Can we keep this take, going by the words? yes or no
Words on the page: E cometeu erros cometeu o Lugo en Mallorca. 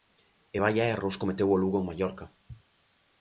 no